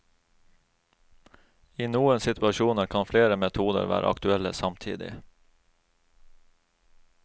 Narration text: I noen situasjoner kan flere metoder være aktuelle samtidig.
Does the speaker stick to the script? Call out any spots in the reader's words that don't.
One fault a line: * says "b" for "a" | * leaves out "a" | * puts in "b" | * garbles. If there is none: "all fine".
all fine